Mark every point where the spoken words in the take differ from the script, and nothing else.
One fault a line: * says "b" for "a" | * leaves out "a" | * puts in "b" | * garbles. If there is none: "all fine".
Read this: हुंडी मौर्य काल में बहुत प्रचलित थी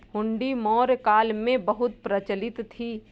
all fine